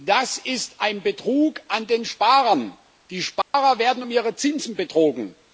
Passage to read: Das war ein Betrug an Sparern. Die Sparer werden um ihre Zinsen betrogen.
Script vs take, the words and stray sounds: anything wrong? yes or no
yes